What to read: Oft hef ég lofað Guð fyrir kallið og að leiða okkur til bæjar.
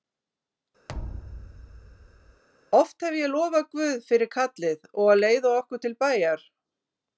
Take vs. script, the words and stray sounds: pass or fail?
fail